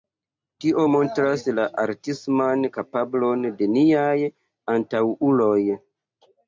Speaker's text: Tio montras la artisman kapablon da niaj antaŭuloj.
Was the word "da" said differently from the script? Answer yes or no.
yes